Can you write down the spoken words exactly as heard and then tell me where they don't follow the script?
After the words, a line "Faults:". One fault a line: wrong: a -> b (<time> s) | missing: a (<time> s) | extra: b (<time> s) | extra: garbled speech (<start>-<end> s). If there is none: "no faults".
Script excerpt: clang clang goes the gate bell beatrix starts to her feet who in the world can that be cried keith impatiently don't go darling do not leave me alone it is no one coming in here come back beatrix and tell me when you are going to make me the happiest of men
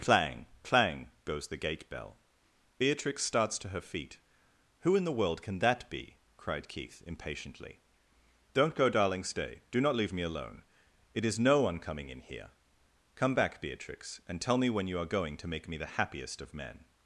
clang clang goes the gate bell beatrix starts to her feet who in the world can that be cried keith impatiently don't go darling stay do not leave me alone it is no one coming in here come back beatrix and tell me when you are going to make me the happiest of men
Faults:
extra: stay (9.2 s)